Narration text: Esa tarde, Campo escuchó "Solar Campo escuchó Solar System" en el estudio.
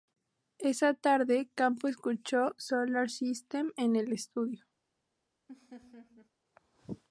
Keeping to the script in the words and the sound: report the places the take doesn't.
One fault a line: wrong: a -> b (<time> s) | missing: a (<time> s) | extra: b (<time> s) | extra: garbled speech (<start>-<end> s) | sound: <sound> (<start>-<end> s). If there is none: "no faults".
missing: Campo escuchó Solar (3.1 s)
sound: laugh (5.5-6.3 s)